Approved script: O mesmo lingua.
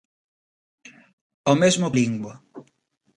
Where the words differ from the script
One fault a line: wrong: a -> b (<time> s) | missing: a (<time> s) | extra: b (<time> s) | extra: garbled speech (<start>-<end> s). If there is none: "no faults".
no faults